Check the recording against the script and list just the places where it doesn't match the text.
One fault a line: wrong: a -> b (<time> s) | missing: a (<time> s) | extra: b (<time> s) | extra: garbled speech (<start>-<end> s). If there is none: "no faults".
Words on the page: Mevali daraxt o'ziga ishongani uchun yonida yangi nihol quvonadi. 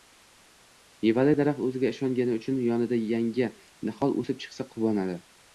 extra: o'sib chiqsa (4.2 s)